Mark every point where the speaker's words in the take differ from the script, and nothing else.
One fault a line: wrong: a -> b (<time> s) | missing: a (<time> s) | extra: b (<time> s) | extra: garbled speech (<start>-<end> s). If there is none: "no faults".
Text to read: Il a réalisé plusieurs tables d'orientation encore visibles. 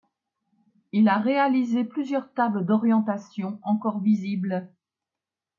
no faults